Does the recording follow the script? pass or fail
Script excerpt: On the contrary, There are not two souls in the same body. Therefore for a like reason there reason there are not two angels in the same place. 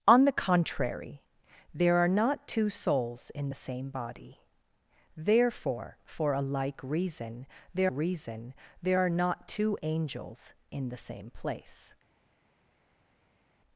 pass